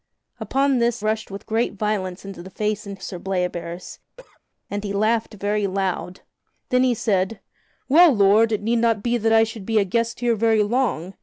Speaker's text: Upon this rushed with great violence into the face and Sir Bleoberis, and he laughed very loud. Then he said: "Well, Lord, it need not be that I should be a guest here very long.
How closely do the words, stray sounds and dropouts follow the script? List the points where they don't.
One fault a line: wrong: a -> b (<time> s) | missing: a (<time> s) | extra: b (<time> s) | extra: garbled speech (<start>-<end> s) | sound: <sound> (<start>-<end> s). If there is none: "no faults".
sound: cough (4.2-4.4 s)